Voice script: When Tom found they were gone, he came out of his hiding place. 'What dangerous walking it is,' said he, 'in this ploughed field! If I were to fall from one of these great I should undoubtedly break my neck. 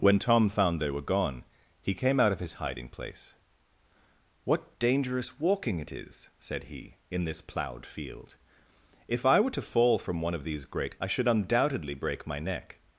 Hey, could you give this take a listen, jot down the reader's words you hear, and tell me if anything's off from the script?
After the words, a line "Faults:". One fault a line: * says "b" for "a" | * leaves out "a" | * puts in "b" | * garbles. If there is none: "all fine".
When Tom found they were gone, he came out of his hiding place. 'What dangerous walking it is,' said he, 'in this ploughed field! If I were to fall from one of these great I should undoubtedly break my neck.
Faults:
all fine